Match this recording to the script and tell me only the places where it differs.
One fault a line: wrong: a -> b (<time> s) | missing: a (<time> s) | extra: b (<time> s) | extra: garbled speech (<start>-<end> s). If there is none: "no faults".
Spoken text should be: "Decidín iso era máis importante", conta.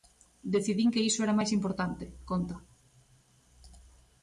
extra: que (0.9 s)